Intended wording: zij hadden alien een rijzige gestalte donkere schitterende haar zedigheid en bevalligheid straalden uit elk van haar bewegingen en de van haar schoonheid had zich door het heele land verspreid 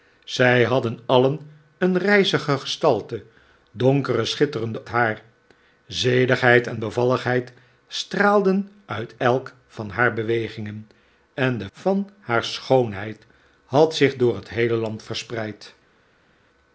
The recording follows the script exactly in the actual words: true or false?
true